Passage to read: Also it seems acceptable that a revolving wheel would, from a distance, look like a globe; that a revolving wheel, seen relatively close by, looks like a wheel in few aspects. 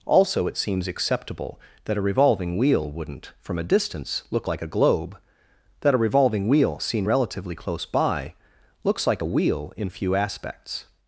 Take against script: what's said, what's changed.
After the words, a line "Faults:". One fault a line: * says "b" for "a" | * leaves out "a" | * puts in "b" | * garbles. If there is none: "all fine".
Also it seems acceptable that a revolving wheel wouldn't, from a distance, look like a globe; that a revolving wheel, seen relatively close by, looks like a wheel in few aspects.
Faults:
* says "wouldn't" for "would"